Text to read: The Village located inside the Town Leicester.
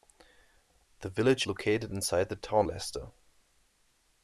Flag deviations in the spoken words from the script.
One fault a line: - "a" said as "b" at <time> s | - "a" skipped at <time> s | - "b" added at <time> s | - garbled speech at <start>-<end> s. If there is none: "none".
none